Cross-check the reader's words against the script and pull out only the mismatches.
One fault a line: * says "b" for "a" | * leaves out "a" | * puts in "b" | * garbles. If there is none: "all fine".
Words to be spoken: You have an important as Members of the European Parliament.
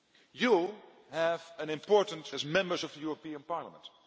all fine